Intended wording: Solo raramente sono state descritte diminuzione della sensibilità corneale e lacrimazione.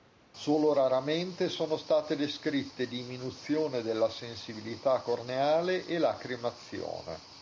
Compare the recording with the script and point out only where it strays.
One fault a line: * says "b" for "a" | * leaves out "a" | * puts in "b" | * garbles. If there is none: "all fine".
all fine